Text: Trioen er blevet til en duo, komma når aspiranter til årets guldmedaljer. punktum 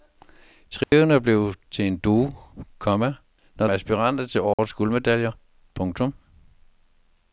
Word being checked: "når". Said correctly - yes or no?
yes